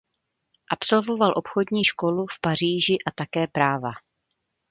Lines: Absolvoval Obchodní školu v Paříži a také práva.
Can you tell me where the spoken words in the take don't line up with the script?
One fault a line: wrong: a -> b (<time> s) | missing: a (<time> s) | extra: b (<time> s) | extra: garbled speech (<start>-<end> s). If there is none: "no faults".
no faults